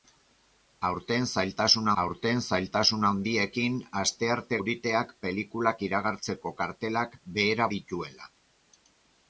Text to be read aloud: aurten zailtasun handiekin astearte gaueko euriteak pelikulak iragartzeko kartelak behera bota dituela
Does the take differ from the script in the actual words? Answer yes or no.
yes